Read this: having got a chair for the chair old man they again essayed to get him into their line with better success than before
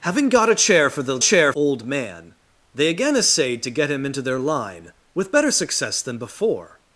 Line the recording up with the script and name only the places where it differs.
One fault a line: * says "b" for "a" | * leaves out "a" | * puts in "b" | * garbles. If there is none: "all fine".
all fine